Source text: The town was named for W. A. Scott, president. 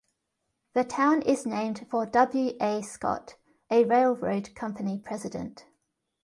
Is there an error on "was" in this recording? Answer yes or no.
yes